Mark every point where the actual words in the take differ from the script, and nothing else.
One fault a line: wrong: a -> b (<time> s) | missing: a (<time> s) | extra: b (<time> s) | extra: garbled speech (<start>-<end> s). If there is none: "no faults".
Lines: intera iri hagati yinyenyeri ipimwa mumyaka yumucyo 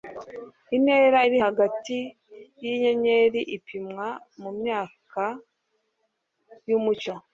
no faults